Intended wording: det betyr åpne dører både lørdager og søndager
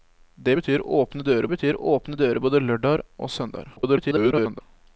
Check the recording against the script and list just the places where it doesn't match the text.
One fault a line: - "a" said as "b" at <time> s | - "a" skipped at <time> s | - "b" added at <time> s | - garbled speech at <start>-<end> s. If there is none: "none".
- "betyr åpne dører" added at 1.5 s
- garbled speech at 3.8-4.6 s